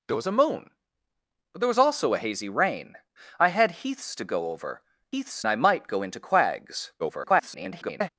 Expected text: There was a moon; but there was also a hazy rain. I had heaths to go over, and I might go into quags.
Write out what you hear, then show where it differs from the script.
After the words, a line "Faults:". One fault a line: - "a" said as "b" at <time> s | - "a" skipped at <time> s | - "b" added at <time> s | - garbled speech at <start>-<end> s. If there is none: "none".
There was a moon; but there was also a hazy rain. I had heaths to go over, heaths I might go into quags. [garbled]
Faults:
- "and" said as "heaths" at 5.1 s
- garbled speech at 7.0-8.1 s